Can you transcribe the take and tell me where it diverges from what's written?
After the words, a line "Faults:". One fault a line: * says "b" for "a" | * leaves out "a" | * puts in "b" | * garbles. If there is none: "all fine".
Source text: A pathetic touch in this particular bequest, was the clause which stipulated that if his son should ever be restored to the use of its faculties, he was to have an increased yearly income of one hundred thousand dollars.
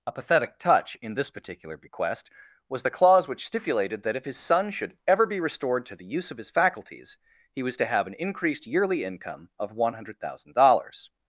A pathetic touch in this particular bequest, was the clause which stipulated that if his son should ever be restored to the use of his faculties, he was to have an increased yearly income of one hundred thousand dollars.
Faults:
* says "his" for "its"